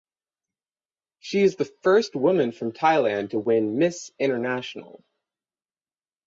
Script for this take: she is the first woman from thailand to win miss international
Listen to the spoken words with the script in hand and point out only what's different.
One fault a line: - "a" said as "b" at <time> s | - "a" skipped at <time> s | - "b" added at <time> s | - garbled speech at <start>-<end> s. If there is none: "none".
none